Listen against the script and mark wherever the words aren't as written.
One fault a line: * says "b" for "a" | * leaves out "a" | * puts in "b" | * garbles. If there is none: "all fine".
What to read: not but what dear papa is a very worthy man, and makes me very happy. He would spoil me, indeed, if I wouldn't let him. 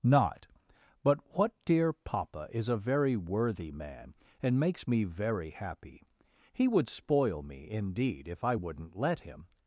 all fine